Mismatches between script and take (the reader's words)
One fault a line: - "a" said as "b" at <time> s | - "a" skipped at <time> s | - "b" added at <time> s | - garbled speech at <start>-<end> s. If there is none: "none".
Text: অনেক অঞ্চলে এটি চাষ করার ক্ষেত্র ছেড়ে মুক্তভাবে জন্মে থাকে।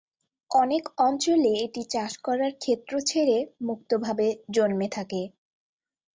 none